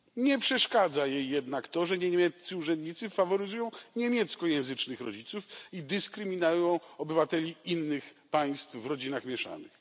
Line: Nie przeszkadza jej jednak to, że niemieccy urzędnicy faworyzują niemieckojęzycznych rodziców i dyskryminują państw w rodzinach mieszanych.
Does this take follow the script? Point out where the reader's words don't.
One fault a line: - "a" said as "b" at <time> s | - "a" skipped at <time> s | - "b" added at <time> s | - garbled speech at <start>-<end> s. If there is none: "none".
- "obywateli innych" added at 7.0 s